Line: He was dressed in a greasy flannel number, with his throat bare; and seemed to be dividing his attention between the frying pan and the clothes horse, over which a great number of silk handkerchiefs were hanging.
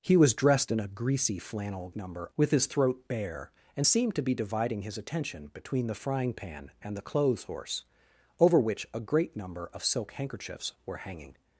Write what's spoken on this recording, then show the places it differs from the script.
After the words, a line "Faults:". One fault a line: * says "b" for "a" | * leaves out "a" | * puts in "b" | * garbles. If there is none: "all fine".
He was dressed in a greasy flannel number, with his throat bare; and seemed to be dividing his attention between the frying pan and the clothes horse, over which a great number of silk handkerchiefs were hanging.
Faults:
all fine